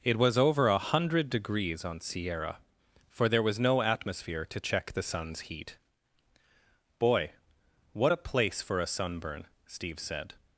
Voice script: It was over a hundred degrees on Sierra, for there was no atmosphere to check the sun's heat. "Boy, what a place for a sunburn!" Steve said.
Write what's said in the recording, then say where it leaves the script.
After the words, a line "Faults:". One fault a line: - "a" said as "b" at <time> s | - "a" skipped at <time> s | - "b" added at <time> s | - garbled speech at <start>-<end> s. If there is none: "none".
It was over a hundred degrees on Sierra, for there was no atmosphere to check the sun's heat. "Boy, what a place for a sunburn!" Steve said.
Faults:
none